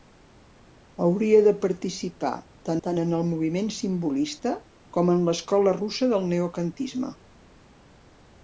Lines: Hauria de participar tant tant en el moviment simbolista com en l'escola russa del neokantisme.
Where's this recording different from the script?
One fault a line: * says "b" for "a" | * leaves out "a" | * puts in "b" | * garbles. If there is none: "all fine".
all fine